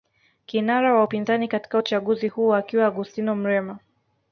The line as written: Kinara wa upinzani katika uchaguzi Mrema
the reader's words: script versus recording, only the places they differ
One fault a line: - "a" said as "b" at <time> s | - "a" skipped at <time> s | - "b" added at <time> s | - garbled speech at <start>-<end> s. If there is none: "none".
- "huo akiwa Augustino" added at 2.3 s